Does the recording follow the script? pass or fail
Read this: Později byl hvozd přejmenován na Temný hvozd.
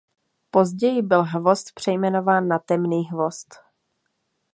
pass